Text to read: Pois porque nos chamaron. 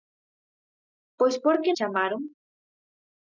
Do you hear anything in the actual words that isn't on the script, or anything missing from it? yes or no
yes